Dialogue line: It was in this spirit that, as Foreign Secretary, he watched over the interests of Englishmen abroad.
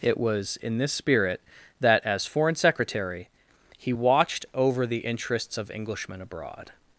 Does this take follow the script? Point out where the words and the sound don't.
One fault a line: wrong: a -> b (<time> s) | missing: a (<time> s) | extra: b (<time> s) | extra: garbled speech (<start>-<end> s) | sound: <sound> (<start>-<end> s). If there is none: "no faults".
no faults